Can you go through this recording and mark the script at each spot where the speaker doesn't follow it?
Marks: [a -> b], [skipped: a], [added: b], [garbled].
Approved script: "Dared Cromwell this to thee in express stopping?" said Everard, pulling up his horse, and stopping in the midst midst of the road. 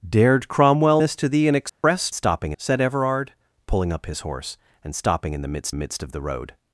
"Dared Cromwell this to thee in express stopping?" said Everard, pulling up his horse, and stopping in the midst midst of the road.